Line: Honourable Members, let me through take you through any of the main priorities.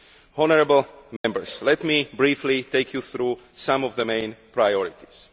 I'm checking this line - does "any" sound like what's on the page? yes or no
no